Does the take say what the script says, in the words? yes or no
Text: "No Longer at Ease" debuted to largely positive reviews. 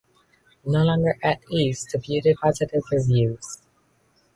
no